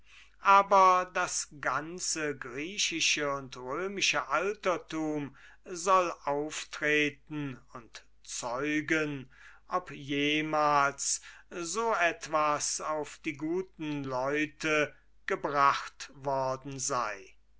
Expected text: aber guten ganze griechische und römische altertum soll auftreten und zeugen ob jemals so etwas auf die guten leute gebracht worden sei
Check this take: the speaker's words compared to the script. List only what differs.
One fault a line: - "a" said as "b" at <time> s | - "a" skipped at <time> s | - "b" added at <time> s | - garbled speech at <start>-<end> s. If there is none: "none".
- "guten" said as "das" at 1.1 s